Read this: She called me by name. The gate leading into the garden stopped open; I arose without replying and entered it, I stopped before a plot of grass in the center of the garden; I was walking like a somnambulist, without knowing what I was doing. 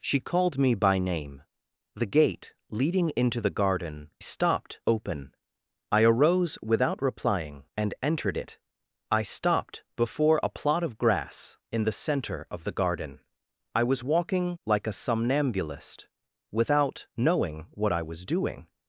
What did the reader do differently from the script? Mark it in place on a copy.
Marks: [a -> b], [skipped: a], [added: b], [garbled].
She called me by name. The gate leading into the garden stopped open; I arose without replying and entered it, I stopped before a plot of grass in the center of the garden; I was walking like a somnambulist, without knowing what I was doing.